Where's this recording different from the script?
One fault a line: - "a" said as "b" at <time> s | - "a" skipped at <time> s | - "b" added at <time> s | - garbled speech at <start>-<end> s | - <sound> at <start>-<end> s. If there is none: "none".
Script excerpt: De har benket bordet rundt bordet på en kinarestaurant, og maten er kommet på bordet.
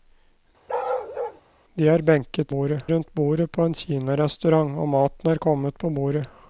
- bark at 0.7-1.4 s